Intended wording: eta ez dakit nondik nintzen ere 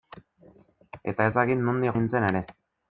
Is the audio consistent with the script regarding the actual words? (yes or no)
yes